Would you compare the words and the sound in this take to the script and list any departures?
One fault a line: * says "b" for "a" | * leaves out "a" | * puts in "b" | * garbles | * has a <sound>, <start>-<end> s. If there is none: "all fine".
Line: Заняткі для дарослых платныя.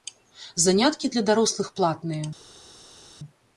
all fine